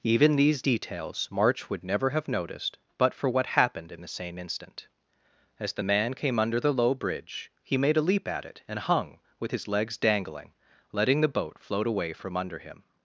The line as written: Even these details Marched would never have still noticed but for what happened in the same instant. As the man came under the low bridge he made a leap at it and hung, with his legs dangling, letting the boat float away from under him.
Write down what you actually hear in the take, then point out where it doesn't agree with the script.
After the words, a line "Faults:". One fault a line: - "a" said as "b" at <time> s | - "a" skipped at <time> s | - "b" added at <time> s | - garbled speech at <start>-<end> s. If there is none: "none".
Even these details March would never have noticed but for what happened in the same instant. As the man came under the low bridge he made a leap at it and hung, with his legs dangling, letting the boat float away from under him.
Faults:
- "Marched" said as "March" at 1.3 s
- "still" skipped at 2.3 s